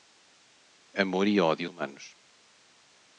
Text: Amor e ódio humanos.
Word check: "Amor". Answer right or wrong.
right